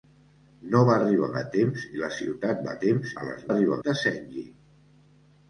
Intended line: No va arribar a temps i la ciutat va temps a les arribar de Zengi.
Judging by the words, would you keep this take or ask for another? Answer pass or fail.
pass